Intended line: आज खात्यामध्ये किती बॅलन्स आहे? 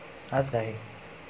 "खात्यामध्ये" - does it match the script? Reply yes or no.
no